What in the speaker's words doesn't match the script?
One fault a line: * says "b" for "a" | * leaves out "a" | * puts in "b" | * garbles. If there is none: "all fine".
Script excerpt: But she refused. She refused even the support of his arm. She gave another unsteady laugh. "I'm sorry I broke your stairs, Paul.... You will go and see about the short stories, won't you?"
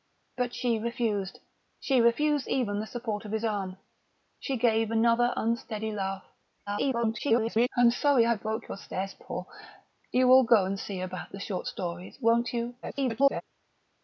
* garbles
* garbles